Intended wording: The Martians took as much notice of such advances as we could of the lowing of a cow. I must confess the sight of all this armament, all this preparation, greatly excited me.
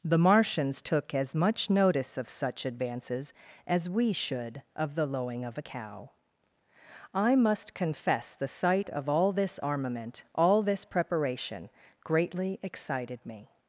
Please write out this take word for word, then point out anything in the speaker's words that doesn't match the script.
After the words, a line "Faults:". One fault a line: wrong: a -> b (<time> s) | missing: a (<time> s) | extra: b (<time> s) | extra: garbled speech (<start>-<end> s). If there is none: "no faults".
The Martians took as much notice of such advances as we should of the lowing of a cow. I must confess the sight of all this armament, all this preparation, greatly excited me.
Faults:
wrong: could -> should (4.1 s)